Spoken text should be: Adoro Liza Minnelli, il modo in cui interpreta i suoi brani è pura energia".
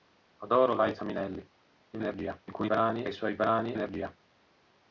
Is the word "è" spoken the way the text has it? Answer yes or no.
no